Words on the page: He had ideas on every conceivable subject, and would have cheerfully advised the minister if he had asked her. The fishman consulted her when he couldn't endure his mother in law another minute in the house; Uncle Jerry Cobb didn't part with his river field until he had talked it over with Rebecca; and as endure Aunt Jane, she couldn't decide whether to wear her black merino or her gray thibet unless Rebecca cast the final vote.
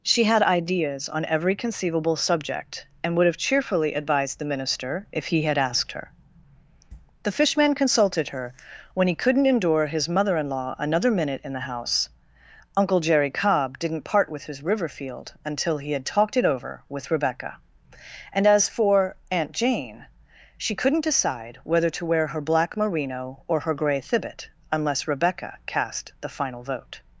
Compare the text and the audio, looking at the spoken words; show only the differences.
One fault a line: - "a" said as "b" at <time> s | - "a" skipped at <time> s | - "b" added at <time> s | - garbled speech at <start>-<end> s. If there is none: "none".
- "He" said as "She" at 0.0 s
- "endure" said as "for" at 18.7 s